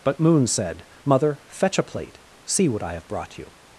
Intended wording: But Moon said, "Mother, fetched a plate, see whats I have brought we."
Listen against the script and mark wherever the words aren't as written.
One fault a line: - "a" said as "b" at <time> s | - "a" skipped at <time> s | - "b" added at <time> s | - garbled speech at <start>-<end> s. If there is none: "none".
- "fetched" said as "fetch" at 1.5 s
- "whats" said as "what" at 2.7 s
- "we" said as "you" at 3.4 s